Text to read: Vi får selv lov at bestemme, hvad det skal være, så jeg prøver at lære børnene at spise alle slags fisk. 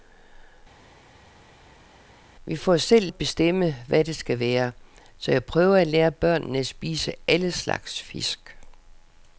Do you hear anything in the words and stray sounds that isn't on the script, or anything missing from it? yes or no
yes